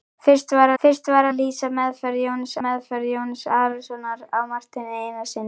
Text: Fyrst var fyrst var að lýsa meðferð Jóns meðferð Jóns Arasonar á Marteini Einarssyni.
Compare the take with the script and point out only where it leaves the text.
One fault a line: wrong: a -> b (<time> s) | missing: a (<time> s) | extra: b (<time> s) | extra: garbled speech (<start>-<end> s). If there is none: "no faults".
no faults